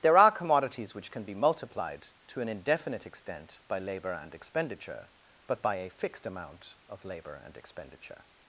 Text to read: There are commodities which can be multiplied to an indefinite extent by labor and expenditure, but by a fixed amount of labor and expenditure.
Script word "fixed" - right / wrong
right